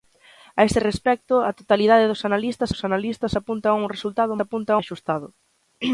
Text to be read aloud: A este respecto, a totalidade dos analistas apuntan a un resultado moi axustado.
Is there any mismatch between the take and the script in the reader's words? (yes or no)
yes